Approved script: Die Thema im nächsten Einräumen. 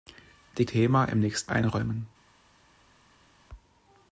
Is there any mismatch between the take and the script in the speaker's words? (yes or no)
no